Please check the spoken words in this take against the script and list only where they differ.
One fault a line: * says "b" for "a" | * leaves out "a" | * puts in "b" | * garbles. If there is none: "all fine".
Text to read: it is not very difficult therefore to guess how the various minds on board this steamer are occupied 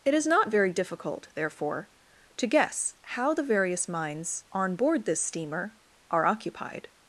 all fine